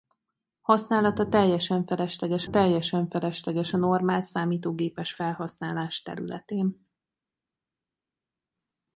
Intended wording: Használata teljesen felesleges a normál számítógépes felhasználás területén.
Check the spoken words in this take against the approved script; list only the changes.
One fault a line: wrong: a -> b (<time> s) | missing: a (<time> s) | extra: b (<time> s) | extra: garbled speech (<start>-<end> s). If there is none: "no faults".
extra: teljesen felesleges (2.5 s)